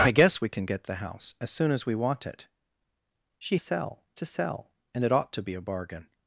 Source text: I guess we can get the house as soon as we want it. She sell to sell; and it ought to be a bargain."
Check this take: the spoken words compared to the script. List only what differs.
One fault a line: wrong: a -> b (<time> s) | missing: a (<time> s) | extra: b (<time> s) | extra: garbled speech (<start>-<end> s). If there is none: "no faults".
no faults